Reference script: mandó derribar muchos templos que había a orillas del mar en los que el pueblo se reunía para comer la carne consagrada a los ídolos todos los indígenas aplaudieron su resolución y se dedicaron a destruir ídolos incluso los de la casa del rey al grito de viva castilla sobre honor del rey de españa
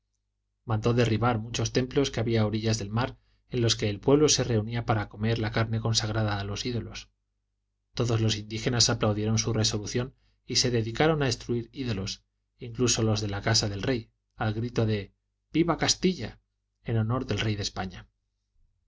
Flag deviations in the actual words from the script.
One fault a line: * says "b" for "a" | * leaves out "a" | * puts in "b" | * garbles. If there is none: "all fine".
* says "en" for "sobre"